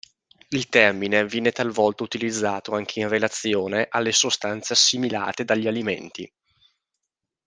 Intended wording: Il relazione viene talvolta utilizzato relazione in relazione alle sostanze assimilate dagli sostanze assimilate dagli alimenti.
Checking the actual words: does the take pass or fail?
fail